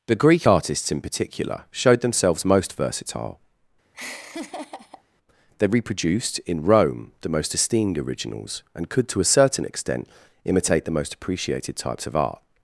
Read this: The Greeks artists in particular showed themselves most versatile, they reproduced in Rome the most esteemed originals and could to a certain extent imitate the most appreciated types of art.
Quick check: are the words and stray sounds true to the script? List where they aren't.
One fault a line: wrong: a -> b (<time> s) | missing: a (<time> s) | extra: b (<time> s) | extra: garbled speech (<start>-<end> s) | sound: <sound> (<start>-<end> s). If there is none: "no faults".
wrong: Greeks -> Greek (0.1 s)
sound: laugh (3.9-5.0 s)